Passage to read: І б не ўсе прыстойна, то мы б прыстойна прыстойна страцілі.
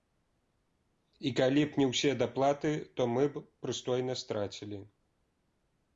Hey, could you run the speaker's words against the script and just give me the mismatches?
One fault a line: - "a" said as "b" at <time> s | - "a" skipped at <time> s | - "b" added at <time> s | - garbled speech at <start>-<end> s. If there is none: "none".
- "калі" added at 1.4 s
- "прыстойна" said as "даплаты" at 2.2 s
- "прыстойна" skipped at 4.1 s